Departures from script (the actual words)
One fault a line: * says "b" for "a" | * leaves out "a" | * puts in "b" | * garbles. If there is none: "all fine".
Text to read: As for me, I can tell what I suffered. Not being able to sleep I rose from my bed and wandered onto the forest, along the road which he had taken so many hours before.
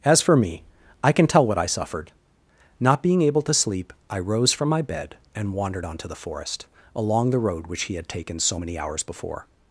all fine